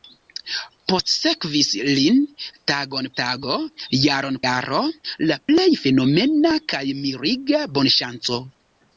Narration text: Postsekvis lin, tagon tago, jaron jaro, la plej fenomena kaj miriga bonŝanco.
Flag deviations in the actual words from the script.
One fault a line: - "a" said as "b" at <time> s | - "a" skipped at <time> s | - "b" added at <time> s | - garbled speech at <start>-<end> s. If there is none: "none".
none